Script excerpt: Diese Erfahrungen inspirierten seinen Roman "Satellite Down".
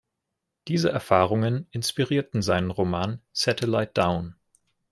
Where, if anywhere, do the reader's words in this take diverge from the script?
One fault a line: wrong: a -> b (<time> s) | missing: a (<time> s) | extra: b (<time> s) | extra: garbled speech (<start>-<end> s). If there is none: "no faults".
no faults